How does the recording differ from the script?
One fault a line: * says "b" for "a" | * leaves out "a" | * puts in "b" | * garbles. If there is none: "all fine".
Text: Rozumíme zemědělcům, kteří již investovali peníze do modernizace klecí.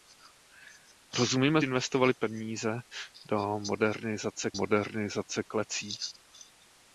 * leaves out "zemědělcům kteří již"
* puts in "modernizace"